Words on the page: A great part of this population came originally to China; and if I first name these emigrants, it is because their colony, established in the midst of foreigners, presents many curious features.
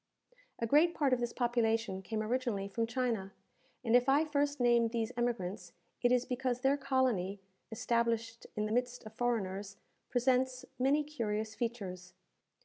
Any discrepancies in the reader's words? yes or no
yes